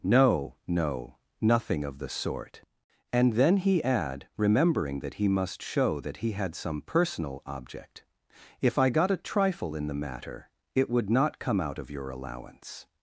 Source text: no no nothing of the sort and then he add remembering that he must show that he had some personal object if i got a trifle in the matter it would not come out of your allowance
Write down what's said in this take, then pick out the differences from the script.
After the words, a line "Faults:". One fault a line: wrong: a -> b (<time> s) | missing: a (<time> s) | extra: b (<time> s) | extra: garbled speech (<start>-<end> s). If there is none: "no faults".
no no nothing of the sort and then he add remembering that he must show that he had some personal object if i got a trifle in the matter it would not come out of your allowance
Faults:
no faults